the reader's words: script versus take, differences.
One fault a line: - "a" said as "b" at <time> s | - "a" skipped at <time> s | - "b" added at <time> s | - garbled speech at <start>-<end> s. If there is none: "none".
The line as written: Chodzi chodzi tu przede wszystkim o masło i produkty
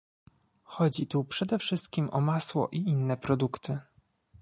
- "chodzi" skipped at 1.1 s
- "inne" added at 2.8 s